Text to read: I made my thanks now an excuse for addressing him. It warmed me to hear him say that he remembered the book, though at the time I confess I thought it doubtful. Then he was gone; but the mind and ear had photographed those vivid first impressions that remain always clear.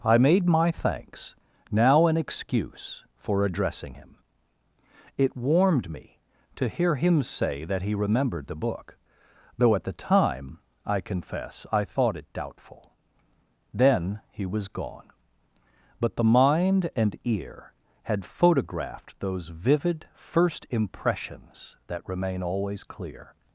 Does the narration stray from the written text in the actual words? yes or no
no